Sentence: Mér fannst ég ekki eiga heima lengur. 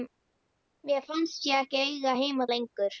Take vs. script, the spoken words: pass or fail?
pass